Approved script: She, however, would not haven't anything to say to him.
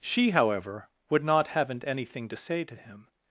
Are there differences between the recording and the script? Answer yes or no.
no